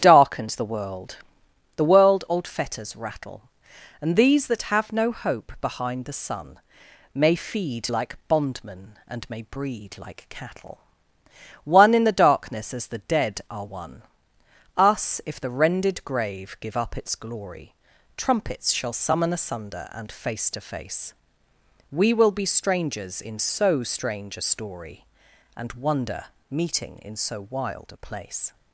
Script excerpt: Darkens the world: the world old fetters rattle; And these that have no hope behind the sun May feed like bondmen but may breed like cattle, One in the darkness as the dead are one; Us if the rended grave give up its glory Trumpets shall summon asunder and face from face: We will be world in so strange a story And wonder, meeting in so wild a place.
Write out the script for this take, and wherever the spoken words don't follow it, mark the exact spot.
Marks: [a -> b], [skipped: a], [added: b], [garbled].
Darkens the world: the world old fetters rattle; And these that have no hope behind the sun May feed like bondmen [but -> and] may breed like cattle, One in the darkness as the dead are one; Us if the rended grave give up its glory Trumpets shall summon asunder and face [from -> to] face: We will be [world -> strangers] in so strange a story And wonder, meeting in so wild a place.